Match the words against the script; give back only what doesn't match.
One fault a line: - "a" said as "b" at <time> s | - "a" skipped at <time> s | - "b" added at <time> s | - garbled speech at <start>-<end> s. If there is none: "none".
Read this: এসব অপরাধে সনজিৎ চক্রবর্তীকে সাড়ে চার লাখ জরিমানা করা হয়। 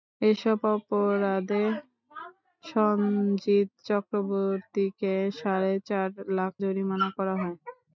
none